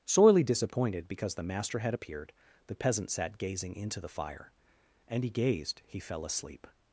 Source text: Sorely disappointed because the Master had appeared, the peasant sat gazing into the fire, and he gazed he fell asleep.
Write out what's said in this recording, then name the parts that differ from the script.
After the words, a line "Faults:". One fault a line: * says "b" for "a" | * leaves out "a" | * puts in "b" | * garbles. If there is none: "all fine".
Sorely disappointed because the Master had appeared, the peasant sat gazing into the fire, and he gazed he fell asleep.
Faults:
all fine